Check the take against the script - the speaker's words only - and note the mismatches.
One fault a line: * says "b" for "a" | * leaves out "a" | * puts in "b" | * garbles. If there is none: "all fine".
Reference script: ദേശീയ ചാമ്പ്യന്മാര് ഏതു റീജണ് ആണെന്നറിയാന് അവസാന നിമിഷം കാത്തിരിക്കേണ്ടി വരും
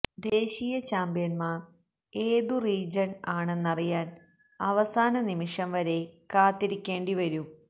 * puts in "വരെ"